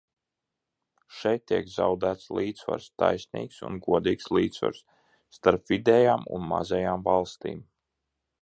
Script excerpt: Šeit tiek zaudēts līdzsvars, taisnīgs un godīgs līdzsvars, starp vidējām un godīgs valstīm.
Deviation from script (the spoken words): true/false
true